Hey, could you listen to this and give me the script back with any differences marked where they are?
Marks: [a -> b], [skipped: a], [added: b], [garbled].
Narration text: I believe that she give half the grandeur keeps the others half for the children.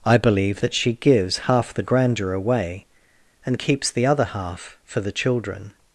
I believe that she [give -> gives] half the grandeur [added: away and] keeps the [others -> other] half for the children.